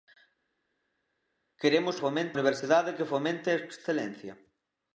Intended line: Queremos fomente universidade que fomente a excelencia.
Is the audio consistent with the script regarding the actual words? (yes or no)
yes